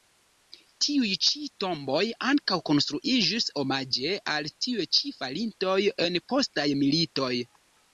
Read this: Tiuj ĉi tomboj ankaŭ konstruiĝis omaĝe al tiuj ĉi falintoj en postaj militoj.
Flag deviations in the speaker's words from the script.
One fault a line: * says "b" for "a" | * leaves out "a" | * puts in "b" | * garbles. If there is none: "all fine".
all fine